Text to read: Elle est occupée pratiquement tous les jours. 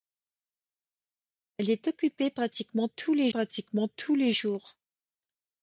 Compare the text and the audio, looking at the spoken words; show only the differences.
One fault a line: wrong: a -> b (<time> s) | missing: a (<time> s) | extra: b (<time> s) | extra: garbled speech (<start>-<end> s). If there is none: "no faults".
extra: pratiquement tous les (3.3 s)